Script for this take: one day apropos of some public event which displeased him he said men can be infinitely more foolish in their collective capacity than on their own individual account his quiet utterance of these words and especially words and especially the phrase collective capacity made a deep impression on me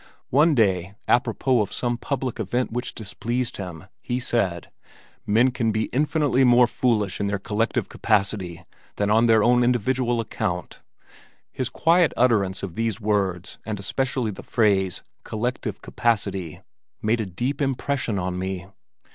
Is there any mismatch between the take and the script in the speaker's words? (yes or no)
yes